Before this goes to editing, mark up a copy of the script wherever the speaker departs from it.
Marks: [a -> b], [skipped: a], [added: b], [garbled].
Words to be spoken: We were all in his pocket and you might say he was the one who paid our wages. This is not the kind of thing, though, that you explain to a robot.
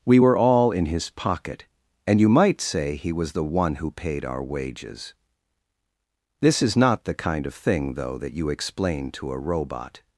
We were all in his pocket and you might say he was the one who paid our wages. This is not the kind of thing, though, that you explain to a robot.